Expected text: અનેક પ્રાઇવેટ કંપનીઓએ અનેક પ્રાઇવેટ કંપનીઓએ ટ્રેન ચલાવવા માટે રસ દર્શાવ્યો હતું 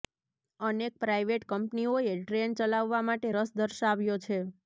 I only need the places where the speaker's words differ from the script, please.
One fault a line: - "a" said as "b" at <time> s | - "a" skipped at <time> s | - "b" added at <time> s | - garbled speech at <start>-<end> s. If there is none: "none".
- "અનેક પ્રાઇવેટ કંપનીઓએ" skipped at 2.1 s
- "હતું" said as "છે" at 4.2 s